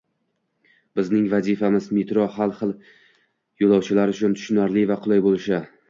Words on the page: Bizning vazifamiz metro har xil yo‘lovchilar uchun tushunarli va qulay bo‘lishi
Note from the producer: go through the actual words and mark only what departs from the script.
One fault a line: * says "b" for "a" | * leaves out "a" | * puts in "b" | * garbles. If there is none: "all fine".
all fine